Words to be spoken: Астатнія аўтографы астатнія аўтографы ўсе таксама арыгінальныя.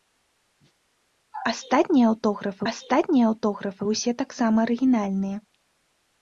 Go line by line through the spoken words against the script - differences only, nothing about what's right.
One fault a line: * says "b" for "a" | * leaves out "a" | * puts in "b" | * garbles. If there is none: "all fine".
all fine